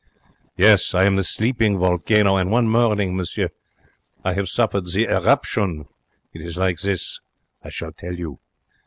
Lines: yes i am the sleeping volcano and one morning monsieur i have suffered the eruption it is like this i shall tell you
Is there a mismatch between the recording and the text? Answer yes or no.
no